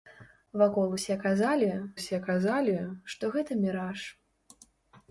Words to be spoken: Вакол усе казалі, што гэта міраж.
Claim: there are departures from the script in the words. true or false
true